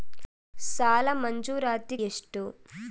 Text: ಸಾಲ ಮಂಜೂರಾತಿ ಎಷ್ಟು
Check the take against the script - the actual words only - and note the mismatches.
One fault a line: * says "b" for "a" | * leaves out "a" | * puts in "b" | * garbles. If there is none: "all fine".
all fine